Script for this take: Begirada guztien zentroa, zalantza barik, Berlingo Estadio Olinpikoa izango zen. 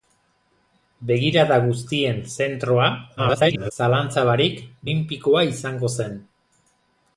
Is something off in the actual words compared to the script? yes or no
yes